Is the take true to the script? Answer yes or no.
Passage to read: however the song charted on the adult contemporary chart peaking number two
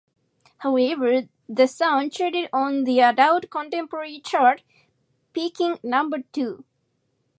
yes